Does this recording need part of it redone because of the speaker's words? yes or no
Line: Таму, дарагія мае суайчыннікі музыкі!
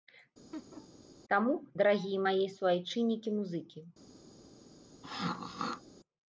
no